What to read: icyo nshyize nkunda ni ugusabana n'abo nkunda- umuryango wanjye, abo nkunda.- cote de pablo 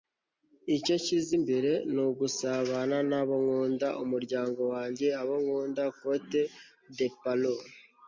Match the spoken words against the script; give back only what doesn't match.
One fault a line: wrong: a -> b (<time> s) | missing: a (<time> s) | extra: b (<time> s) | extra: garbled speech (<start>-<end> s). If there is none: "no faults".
wrong: nkunda -> imbere (1.4 s)